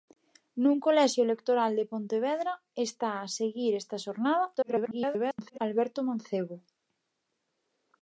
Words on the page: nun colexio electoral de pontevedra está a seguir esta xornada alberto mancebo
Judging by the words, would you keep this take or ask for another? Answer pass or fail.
fail